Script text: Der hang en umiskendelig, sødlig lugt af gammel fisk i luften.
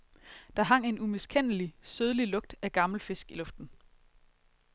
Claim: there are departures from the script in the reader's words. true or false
false